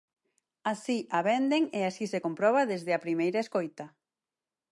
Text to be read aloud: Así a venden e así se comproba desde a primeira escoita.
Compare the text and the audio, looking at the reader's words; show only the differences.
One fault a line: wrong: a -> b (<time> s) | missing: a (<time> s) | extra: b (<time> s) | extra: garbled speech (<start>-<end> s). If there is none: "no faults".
no faults